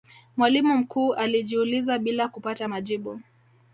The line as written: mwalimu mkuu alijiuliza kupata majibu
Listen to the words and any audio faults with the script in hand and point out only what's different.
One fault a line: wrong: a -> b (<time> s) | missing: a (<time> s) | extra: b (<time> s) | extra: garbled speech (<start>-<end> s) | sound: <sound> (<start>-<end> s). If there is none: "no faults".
extra: bila (2.0 s)